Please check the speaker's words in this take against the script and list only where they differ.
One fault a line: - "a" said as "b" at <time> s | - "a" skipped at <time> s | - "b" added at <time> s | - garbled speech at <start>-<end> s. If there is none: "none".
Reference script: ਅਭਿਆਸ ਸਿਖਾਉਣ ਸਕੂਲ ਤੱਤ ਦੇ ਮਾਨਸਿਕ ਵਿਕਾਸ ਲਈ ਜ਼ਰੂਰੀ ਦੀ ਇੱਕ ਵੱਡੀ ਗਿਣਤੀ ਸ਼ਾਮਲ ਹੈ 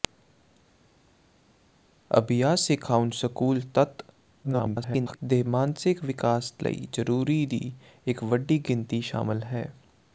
- garbled speech at 4.4-5.2 s